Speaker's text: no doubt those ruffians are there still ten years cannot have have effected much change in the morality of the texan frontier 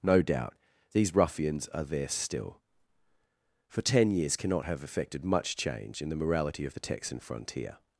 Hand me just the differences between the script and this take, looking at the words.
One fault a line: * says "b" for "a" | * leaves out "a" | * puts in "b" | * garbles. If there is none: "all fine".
* says "these" for "those"
* puts in "for"
* leaves out "have"